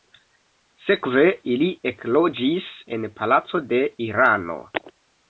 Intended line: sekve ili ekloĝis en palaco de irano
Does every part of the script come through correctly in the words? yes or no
yes